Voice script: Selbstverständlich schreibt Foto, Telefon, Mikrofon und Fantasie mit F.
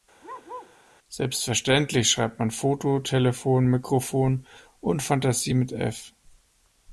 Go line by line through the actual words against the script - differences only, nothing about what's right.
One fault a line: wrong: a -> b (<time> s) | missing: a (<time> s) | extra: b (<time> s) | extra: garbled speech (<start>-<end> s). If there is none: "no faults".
extra: man (2.4 s)